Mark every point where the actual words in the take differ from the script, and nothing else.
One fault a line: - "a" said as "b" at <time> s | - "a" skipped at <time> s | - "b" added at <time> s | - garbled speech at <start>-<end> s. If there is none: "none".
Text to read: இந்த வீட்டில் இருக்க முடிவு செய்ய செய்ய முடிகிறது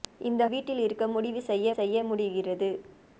none